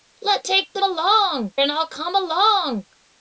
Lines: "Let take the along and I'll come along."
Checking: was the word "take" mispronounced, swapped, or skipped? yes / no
no